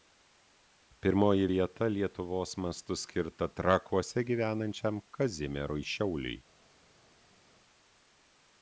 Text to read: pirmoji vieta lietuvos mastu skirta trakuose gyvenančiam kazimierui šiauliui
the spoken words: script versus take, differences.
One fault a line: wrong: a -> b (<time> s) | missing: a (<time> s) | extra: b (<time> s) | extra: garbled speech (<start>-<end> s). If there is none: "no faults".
no faults